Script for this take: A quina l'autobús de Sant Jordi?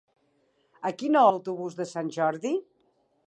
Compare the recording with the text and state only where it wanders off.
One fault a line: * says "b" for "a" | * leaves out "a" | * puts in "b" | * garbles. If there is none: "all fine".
all fine